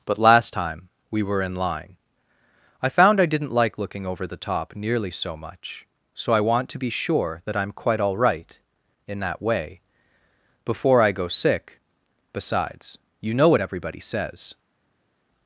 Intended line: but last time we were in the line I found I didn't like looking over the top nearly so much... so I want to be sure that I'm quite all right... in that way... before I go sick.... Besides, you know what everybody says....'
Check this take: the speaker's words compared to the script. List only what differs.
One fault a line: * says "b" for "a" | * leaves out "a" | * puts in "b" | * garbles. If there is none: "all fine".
* leaves out "the"